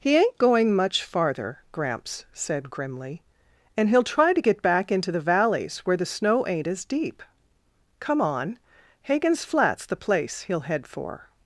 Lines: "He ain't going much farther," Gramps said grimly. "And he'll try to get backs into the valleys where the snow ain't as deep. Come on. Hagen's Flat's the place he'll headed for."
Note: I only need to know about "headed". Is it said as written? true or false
false